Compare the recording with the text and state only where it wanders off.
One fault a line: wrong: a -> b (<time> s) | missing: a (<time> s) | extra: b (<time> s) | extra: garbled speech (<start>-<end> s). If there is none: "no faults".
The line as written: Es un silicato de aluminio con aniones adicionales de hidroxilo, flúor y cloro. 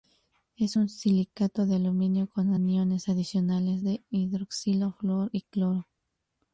no faults